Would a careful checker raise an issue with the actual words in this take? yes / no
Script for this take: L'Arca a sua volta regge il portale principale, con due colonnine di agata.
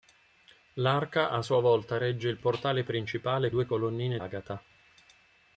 yes